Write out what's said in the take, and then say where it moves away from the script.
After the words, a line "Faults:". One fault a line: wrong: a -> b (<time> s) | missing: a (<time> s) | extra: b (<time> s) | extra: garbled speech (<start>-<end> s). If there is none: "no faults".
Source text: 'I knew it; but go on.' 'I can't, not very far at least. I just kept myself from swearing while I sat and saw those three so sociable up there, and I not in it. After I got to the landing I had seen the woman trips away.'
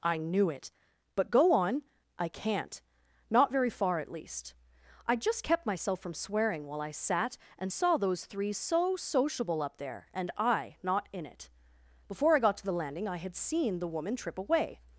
'I knew it; but go on.' 'I can't, not very far at least. I just kept myself from swearing while I sat and saw those three so sociable up there, and I not in it. Before I got to the landing I had seen the woman trip away.'
Faults:
wrong: After -> Before (12.1 s)
wrong: trips -> trip (14.2 s)